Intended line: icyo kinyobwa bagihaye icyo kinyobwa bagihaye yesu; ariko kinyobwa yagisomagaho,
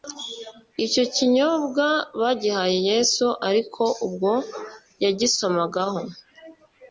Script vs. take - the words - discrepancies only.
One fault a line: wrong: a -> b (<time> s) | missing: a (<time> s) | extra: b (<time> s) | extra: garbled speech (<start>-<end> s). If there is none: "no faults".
missing: icyo kinyobwa bagihaye (2.8 s)
wrong: kinyobwa -> ubwo (4.1 s)